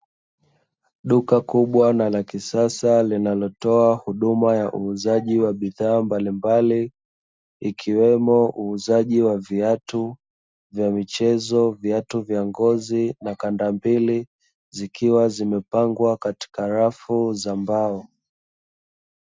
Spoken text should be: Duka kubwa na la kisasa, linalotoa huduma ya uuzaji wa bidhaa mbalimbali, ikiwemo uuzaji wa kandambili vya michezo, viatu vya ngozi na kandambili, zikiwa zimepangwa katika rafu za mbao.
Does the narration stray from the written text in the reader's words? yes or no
yes